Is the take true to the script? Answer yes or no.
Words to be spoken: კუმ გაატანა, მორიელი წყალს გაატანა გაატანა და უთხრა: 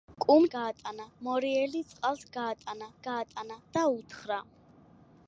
yes